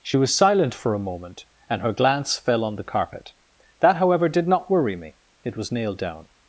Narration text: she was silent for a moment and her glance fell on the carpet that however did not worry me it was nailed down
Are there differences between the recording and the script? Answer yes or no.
no